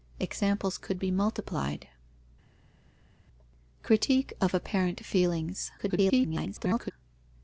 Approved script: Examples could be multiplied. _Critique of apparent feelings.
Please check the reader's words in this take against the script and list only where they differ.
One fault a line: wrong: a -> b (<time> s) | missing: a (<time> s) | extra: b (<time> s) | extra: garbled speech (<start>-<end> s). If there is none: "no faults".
extra: garbled speech (5.8-6.9 s)